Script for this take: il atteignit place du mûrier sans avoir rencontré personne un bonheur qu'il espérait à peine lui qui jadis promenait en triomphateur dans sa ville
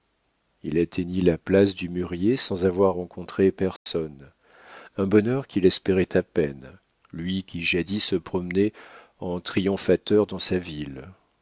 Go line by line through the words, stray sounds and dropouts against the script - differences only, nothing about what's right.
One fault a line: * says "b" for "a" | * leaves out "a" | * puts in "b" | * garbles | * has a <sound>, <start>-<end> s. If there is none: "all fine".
* puts in "la"
* has a dropout, 3.8-3.9 s
* puts in "se"